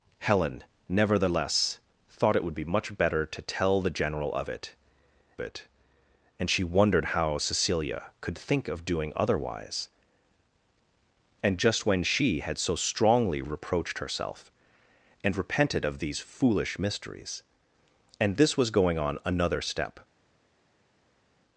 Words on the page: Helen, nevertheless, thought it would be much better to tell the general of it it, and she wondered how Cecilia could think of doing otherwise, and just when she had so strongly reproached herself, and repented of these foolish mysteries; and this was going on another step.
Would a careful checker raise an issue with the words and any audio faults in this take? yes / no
no